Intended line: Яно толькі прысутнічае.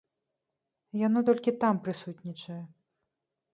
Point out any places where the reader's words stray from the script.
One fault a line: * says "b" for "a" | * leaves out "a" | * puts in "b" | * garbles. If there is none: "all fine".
* puts in "там"